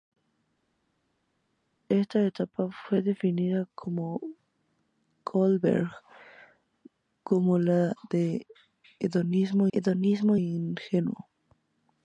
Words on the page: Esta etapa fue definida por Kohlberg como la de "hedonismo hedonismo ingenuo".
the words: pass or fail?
pass